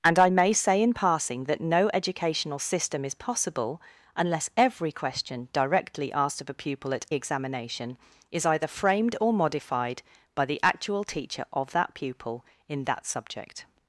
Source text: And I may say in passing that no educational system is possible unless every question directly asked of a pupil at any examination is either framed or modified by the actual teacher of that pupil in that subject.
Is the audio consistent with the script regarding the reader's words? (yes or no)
no